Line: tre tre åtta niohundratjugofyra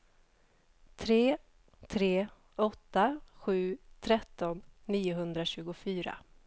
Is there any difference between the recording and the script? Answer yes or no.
yes